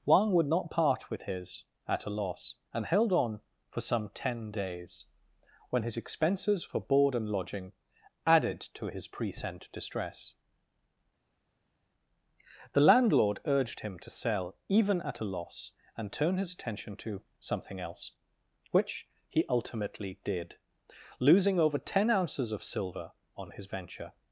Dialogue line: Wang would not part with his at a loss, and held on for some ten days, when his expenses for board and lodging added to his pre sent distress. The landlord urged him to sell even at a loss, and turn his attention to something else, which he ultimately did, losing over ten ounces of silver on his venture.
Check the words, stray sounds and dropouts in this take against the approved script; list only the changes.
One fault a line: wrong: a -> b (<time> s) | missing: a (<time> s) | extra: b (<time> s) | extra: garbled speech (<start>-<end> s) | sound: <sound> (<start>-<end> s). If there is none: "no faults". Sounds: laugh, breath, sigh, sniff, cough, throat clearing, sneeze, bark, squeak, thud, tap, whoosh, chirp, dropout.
no faults